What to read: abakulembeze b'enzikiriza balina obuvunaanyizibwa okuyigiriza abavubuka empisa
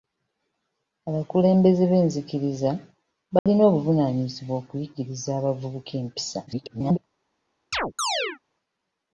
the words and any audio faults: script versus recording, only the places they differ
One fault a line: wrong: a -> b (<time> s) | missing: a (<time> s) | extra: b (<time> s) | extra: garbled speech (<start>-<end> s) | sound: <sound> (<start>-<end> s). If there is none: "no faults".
sound: dropout (3.4-3.5 s)
extra: garbled speech (6.5-7.0 s)
sound: chirp (7.7-8.4 s)